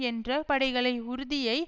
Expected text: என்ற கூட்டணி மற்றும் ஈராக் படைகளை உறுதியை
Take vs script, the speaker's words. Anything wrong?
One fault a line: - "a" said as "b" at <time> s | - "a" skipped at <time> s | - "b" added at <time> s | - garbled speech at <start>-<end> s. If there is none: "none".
- "கூட்டணி மற்றும் ஈராக்" skipped at 0.3 s